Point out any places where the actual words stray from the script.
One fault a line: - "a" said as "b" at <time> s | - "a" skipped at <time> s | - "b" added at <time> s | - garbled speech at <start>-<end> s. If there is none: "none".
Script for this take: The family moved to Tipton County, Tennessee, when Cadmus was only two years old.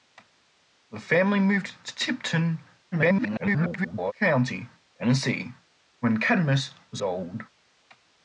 - garbled speech at 2.9-4.1 s
- "only two years" skipped at 7.0 s